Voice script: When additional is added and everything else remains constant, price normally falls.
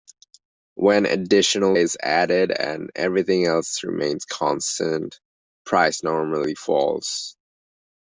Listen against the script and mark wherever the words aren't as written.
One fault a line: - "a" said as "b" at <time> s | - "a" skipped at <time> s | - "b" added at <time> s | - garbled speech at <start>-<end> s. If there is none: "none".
none